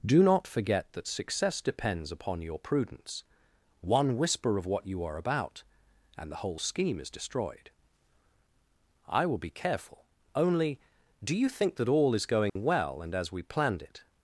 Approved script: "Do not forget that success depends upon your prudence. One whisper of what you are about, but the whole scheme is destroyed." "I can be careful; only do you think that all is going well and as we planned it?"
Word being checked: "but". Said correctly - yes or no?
no